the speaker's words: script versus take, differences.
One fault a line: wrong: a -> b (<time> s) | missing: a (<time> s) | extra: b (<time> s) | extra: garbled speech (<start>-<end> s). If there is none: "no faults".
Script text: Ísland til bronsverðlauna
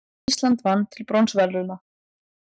extra: vann (0.7 s)